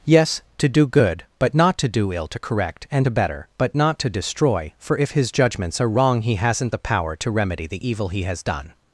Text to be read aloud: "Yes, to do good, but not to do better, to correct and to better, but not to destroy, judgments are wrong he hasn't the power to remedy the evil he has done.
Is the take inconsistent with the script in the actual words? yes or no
yes